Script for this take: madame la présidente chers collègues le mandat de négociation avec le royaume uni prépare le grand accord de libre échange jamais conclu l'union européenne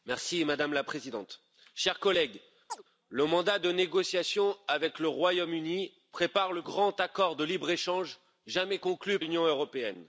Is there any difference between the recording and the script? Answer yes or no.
no